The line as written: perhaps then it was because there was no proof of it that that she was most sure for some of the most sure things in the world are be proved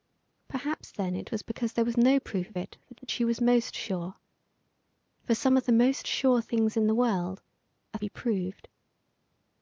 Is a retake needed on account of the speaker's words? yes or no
no